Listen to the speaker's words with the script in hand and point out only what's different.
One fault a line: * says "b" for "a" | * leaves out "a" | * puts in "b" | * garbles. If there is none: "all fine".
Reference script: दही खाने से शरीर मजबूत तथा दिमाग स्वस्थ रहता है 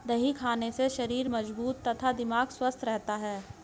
all fine